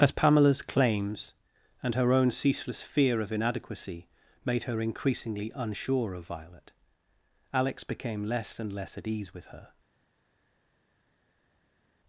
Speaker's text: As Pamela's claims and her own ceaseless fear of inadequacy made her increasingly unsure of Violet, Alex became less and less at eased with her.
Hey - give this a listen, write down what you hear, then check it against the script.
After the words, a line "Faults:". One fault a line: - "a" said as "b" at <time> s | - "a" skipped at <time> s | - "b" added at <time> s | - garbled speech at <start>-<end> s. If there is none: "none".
As Pamela's claims and her own ceaseless fear of inadequacy made her increasingly unsure of Violet, Alex became less and less at ease with her.
Faults:
- "eased" said as "ease" at 9.1 s